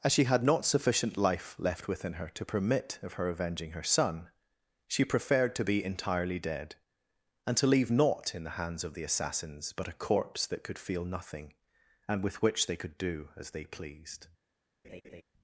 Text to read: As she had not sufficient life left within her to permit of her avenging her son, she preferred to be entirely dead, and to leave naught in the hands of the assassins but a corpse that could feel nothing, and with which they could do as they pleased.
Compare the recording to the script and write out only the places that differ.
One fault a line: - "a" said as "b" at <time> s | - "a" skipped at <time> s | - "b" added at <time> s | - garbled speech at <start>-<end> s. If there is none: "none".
none